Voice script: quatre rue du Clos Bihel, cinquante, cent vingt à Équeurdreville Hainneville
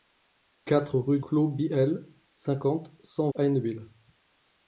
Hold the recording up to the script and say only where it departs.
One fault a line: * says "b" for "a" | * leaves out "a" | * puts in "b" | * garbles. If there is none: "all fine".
* leaves out "du"
* leaves out "vingt à Équeurdreville"